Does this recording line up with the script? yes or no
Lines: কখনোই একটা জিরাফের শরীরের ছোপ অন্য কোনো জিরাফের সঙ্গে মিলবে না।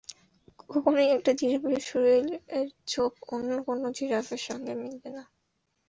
yes